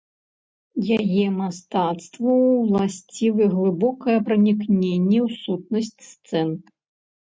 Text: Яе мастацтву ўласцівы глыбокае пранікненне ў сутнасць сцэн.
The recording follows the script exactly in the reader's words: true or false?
true